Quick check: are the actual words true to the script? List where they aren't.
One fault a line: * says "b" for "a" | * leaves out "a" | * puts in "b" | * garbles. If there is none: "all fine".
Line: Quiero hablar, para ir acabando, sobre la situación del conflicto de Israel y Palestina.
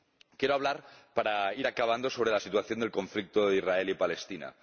all fine